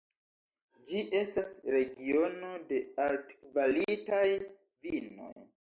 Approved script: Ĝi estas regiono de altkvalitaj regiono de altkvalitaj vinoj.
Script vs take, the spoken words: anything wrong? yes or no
yes